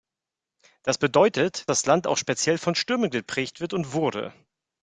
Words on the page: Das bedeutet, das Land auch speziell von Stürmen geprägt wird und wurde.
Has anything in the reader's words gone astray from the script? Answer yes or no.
no